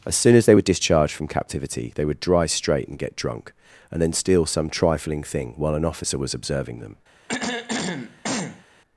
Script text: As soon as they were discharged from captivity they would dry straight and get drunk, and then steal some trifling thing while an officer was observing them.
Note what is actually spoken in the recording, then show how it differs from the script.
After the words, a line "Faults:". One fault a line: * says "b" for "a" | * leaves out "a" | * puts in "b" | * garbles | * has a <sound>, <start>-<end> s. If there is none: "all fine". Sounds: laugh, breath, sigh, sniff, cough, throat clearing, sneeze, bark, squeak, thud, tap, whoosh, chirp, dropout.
As soon as they were discharged from captivity they would dry straight and get drunk, and then steal some trifling thing while an officer was observing them.
Faults:
* has a throat clearing, 7.3-8.6 s